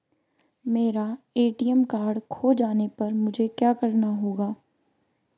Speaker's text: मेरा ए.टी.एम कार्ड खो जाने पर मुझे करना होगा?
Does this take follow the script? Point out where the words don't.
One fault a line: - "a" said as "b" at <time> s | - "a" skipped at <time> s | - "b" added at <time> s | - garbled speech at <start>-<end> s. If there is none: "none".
- "क्या" added at 3.5 s